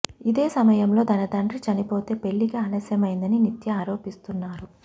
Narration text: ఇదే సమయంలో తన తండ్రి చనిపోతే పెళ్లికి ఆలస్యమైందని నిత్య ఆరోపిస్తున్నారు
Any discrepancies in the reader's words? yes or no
no